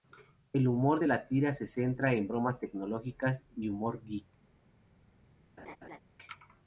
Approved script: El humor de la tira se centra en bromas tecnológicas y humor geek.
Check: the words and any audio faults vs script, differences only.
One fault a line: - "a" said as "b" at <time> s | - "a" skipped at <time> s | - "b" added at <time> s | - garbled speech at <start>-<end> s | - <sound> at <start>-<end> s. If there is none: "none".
- laugh at 5.6-6.0 s